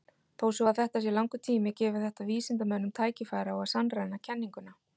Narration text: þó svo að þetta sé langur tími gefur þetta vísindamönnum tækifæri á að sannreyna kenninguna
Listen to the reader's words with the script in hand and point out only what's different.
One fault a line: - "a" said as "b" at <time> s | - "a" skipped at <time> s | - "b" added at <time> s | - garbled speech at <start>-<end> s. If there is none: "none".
none